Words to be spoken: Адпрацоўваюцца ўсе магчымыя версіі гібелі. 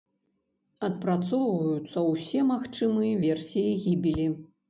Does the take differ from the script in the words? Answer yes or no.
no